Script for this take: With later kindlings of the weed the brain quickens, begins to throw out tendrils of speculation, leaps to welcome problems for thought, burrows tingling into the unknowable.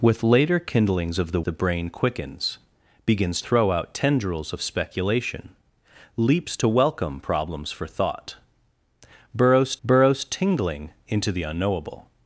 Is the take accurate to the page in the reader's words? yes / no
no